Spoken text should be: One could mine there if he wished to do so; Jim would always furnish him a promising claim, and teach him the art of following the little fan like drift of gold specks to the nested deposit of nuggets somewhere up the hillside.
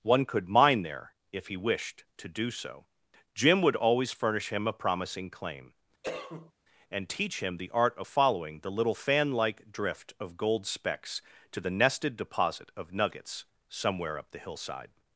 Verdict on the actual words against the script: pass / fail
pass